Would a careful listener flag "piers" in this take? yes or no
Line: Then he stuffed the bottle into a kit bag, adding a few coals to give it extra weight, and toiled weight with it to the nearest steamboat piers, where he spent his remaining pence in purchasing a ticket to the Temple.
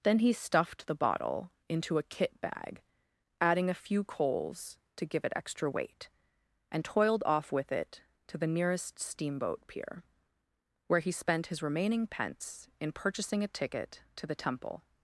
yes